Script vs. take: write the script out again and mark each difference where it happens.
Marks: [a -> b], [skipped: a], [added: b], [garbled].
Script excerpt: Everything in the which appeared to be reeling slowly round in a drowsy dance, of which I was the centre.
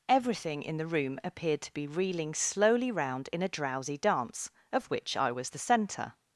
Everything in the [which -> room] appeared to be reeling slowly round in a drowsy dance, of which I was the centre.